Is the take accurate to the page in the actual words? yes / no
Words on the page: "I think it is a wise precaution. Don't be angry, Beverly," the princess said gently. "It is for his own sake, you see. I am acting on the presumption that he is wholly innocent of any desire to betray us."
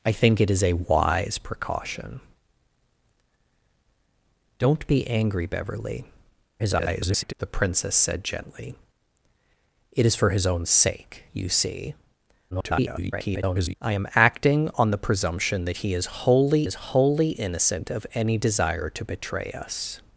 no